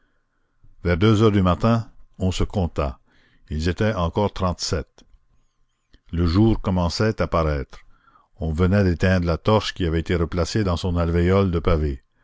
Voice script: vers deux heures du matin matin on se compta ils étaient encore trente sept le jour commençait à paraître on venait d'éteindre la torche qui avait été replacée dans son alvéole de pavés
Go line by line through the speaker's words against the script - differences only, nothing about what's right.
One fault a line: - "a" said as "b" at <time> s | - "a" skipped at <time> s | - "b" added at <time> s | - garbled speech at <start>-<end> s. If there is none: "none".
- "matin" skipped at 1.9 s